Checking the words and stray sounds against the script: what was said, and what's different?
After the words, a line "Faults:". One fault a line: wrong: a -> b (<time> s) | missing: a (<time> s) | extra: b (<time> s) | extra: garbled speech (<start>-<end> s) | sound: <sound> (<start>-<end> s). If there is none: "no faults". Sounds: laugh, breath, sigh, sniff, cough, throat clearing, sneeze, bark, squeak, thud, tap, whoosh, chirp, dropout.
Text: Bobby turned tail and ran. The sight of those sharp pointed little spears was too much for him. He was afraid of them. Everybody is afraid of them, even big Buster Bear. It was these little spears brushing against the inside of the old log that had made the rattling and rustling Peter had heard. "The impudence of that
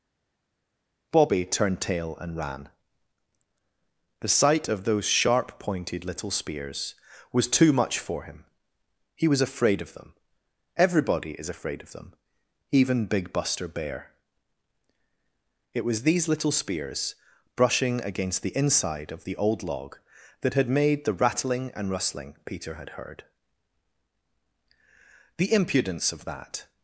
Bobby turned tail and ran. The sight of those sharp pointed little spears was too much for him. He was afraid of them. Everybody is afraid of them, even big Buster Bear. It was these little spears brushing against the inside of the old log that had made the rattling and rustling Peter had heard. "The impudence of that
Faults:
no faults